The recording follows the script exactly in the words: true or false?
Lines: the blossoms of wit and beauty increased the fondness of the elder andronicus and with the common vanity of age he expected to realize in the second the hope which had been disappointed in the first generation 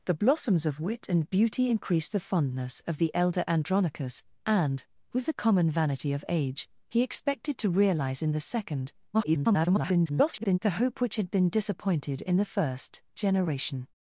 false